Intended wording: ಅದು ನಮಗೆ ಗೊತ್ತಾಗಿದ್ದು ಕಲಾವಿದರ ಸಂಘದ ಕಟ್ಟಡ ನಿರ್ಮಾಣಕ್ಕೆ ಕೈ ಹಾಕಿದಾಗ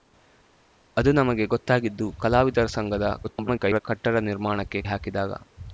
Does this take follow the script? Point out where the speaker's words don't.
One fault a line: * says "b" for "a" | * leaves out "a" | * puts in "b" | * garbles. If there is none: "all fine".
* garbles
* leaves out "ಕೈ"